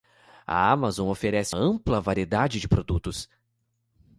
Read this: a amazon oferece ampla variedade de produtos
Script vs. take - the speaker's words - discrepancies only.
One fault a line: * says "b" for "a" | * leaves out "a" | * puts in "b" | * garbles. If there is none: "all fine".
all fine